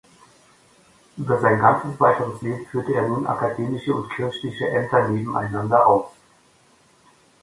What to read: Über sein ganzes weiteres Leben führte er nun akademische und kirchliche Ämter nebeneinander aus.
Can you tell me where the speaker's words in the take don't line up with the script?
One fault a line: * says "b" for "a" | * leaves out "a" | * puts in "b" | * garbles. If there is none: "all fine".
all fine